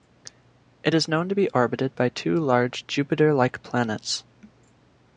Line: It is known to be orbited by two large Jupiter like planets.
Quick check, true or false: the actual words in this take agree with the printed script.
true